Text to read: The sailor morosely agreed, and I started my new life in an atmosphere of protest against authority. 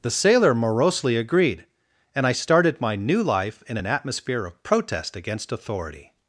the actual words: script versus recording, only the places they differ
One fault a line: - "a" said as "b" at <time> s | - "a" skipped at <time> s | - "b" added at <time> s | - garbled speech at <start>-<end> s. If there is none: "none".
none